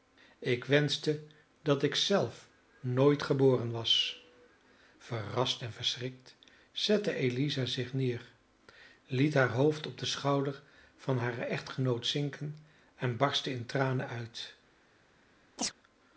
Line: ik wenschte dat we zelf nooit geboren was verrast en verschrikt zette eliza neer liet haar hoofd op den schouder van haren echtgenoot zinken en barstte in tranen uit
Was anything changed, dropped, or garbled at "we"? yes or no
yes